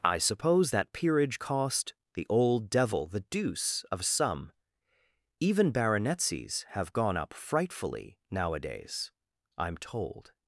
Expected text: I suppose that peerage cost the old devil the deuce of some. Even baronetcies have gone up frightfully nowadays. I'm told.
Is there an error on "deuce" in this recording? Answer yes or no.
no